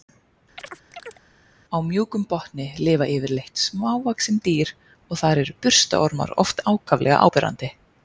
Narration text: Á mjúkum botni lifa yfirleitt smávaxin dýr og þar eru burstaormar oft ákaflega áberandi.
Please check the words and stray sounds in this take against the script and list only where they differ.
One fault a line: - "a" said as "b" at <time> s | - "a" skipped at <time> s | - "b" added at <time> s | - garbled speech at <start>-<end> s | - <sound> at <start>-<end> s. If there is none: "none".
- chirp at 0.6-1.2 s